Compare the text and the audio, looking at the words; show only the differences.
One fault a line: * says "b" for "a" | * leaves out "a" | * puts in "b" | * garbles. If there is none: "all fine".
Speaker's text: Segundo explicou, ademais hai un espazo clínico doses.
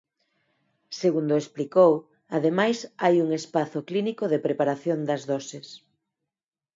* puts in "de preparación das"